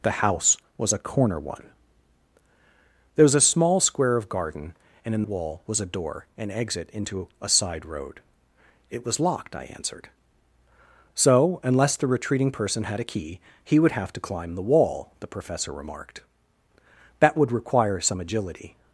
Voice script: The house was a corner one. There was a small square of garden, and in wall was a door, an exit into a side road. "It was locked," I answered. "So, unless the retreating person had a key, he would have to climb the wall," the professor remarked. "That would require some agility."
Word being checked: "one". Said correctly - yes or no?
yes